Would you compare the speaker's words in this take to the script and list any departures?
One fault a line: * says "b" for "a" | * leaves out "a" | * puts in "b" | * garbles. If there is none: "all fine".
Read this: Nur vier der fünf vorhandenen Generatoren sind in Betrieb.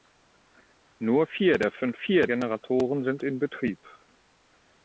* says "vier" for "vorhandenen"